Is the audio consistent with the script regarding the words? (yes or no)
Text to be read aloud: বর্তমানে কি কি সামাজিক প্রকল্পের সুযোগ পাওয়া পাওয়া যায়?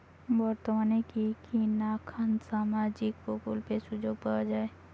no